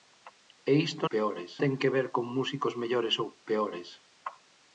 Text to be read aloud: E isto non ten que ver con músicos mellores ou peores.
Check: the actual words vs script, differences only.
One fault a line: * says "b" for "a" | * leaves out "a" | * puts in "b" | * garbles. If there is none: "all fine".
* says "peores" for "non"